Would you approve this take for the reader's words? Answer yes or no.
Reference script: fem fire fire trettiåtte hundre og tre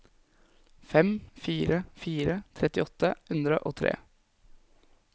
yes